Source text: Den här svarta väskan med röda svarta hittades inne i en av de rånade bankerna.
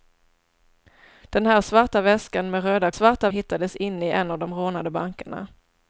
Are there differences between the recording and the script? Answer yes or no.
no